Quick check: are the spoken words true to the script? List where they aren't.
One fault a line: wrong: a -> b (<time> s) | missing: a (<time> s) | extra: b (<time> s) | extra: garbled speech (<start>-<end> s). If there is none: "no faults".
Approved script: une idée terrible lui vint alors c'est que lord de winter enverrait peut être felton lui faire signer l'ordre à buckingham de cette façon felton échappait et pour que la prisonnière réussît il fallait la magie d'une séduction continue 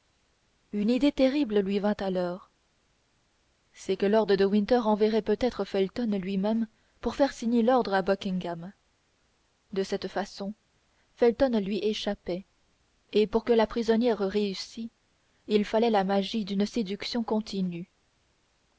extra: même pour (6.4 s)
extra: lui (11.6 s)